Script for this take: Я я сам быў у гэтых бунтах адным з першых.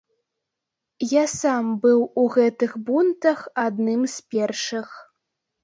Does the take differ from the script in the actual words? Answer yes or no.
yes